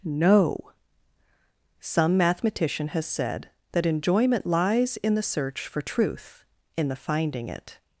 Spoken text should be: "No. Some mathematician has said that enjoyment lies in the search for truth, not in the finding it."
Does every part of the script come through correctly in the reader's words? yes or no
no